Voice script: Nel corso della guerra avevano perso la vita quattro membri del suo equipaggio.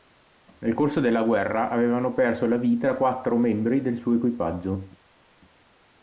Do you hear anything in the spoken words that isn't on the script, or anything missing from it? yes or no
no